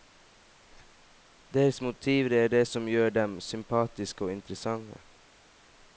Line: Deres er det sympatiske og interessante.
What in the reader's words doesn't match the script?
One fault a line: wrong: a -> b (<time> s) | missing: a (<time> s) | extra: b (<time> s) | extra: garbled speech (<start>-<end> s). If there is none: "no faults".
extra: motiver (1.8 s)
extra: som gjør dem (2.6 s)